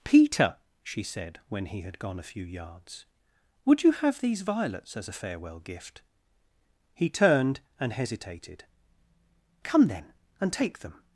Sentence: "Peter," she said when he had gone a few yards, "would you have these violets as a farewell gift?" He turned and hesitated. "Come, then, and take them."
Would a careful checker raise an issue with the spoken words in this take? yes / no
no